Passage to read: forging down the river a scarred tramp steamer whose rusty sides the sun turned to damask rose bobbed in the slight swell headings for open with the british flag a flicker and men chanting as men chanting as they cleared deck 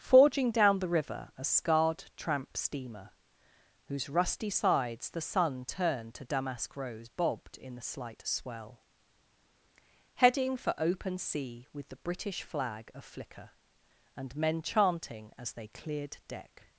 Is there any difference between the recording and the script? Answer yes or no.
yes